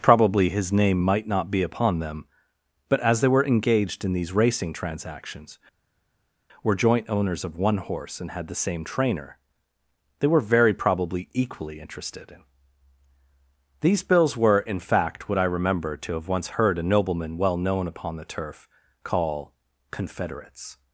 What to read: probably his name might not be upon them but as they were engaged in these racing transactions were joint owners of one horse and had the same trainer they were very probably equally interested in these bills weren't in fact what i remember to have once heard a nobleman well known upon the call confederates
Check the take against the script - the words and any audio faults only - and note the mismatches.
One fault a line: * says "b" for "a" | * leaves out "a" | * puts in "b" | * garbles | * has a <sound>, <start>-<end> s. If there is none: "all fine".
* says "were" for "weren't"
* puts in "turf"